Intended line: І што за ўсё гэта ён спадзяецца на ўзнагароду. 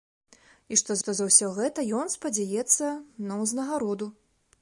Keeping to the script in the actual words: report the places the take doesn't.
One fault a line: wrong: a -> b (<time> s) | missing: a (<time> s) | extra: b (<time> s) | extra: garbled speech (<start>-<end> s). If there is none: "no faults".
extra: што (1.0 s)